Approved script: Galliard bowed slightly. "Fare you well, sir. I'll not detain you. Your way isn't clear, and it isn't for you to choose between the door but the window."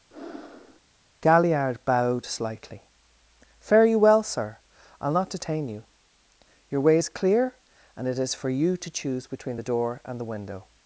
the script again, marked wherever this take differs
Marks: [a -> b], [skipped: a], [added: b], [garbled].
Galliard bowed slightly. "Fare you well, sir. I'll not detain you. Your way [isn't -> is] clear, and it [isn't -> is] for you to choose between the door [but -> and] the window."